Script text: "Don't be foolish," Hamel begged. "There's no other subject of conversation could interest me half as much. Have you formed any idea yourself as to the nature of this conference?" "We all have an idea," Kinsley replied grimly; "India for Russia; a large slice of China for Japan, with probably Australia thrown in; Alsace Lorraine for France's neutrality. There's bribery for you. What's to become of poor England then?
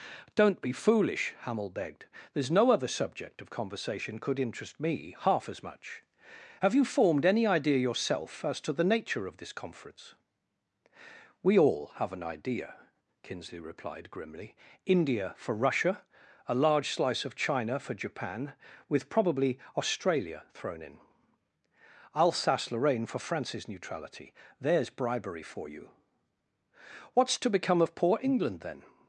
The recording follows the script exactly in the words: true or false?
true